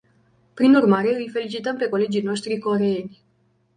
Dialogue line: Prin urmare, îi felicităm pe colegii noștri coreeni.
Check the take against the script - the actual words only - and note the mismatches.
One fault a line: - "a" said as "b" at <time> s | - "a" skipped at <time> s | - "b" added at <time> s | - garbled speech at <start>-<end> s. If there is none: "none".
none